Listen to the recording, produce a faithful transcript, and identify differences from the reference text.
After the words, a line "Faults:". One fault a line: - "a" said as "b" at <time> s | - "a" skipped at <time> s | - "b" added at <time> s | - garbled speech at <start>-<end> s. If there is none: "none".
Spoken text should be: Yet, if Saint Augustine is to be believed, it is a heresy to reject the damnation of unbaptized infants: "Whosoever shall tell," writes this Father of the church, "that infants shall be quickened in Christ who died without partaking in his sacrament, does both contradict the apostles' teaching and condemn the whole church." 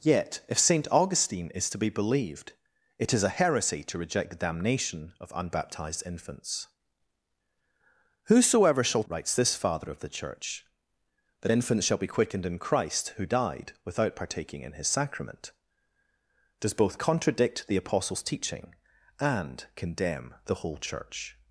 Yet, if Saint Augustine is to be believed, it is a heresy to reject the damnation of unbaptized infants: "Whosoever shall," writes this Father of the church, "that infants shall be quickened in Christ who died without partaking in his sacrament, does both contradict the apostles' teaching and condemn the whole church."
Faults:
- "tell" skipped at 9.0 s